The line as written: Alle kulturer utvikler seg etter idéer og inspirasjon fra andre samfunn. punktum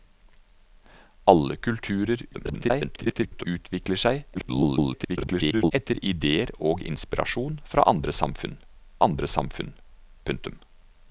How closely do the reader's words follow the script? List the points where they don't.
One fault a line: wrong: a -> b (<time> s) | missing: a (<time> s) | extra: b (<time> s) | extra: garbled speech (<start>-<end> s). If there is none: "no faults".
extra: garbled speech (2.3-3.5 s)
extra: garbled speech (4.3-5.7 s)
extra: andre samfunn (9.1 s)